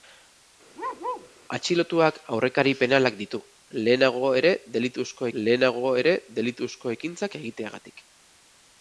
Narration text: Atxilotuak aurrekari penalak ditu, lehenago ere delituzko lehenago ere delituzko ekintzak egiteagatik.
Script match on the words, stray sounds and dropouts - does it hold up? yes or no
no